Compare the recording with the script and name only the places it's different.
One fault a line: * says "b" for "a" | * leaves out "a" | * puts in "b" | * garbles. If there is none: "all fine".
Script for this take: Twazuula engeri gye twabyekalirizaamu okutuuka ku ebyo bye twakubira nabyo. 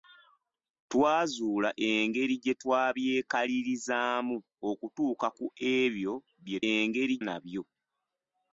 * says "engeri" for "twakubira"